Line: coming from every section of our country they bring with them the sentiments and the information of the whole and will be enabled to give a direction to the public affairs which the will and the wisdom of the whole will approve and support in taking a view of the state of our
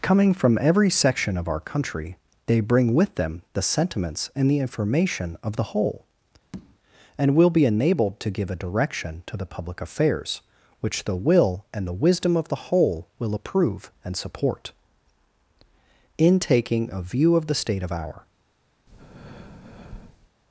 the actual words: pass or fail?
pass